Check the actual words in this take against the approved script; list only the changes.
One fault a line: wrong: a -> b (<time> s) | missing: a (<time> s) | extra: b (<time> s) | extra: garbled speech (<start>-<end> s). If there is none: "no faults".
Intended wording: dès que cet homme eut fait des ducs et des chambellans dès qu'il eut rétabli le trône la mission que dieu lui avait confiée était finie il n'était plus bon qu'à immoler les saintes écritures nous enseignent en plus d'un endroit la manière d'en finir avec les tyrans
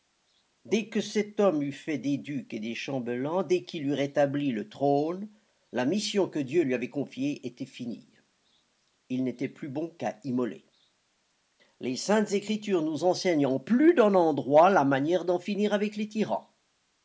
no faults